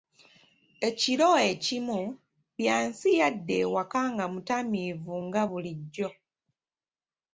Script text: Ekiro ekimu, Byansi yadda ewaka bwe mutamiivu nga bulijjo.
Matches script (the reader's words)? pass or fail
fail